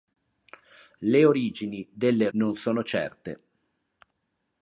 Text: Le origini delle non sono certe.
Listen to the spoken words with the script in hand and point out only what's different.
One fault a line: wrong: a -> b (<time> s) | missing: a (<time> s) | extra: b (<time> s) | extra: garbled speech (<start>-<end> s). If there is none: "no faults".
no faults